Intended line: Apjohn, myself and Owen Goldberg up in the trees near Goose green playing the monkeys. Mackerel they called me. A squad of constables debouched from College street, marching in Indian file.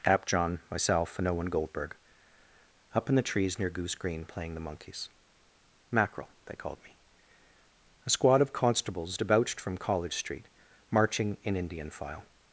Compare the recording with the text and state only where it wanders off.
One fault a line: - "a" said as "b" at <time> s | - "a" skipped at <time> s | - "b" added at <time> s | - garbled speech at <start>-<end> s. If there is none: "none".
none